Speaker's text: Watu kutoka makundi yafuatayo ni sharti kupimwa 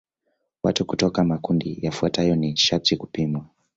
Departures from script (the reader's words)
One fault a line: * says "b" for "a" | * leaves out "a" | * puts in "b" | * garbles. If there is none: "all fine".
all fine